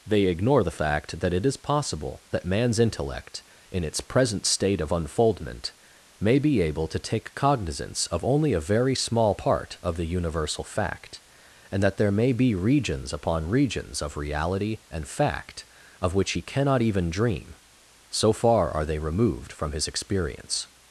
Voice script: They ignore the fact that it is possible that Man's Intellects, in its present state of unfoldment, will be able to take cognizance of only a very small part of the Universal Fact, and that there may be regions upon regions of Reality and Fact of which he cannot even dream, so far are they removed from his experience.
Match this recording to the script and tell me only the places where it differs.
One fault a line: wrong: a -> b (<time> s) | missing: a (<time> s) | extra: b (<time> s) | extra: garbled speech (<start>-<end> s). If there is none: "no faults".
wrong: Intellects -> Intellect (2.8 s)
wrong: will -> may (6.2 s)